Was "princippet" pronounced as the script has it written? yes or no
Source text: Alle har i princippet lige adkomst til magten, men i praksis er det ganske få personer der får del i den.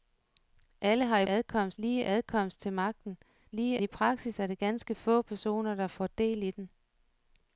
no